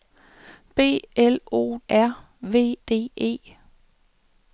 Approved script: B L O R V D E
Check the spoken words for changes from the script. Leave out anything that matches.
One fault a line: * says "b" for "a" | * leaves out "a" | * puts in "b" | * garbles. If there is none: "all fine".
all fine